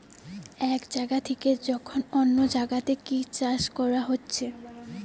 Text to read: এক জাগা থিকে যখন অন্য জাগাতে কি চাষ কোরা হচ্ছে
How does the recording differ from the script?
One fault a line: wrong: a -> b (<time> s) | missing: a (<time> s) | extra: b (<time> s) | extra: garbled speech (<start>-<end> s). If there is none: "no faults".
no faults